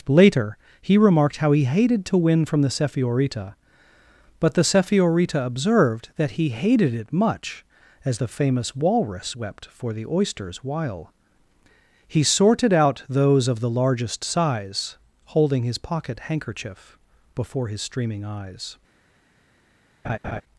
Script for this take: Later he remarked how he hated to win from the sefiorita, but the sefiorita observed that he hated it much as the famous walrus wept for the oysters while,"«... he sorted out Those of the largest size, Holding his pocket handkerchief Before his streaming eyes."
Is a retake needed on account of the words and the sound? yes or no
yes